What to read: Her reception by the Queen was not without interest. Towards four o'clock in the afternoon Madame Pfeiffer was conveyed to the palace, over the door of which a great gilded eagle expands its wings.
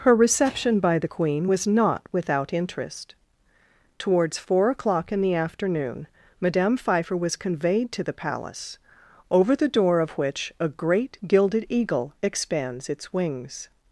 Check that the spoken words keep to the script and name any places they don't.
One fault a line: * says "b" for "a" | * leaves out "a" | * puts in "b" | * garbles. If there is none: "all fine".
all fine